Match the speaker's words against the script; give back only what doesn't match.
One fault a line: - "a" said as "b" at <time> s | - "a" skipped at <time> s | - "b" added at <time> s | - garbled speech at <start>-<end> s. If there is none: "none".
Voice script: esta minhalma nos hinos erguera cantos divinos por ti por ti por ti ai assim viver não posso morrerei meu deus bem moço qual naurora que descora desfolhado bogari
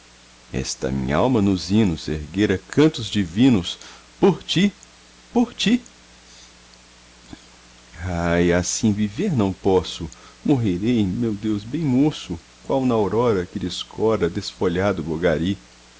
- "por ti" skipped at 5.8 s